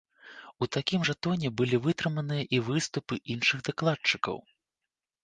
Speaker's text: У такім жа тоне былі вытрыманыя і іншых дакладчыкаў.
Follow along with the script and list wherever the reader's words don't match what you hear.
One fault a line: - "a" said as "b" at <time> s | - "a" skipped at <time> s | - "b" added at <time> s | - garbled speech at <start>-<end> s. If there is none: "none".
- "выступы" added at 2.7 s